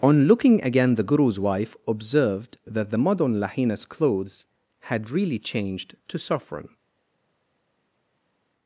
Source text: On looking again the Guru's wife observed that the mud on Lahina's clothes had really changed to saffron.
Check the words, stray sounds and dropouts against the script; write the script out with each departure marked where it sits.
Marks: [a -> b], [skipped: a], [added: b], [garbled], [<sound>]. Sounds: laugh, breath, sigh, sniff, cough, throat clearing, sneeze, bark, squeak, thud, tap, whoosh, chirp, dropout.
On looking again the Guru's wife observed that the mud on Lahina's clothes had really changed to saffron.